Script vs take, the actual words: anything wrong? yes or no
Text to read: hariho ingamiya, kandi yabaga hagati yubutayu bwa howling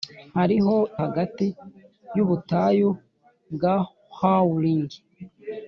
yes